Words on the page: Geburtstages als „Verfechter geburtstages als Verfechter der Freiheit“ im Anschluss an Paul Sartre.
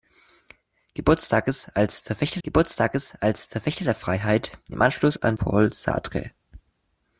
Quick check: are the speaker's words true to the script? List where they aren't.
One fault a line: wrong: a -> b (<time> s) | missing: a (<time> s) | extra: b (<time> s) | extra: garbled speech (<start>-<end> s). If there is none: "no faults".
no faults